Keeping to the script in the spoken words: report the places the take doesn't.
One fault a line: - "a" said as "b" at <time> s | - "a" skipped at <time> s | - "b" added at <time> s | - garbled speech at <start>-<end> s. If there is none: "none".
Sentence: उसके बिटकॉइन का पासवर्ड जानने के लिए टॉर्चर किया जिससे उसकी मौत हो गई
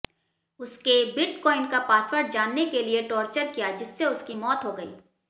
none